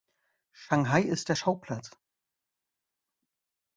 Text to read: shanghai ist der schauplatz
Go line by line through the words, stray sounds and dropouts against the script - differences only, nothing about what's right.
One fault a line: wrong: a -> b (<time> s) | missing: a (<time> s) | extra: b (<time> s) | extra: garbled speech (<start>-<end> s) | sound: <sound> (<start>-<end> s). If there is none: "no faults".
no faults